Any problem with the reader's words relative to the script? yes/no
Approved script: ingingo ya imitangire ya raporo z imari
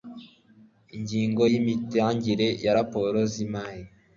no